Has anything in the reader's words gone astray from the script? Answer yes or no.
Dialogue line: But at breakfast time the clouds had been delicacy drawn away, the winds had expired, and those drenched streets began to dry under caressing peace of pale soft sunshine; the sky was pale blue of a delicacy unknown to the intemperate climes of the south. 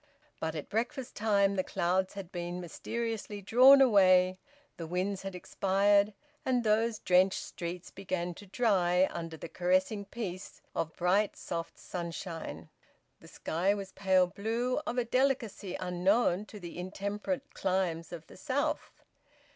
yes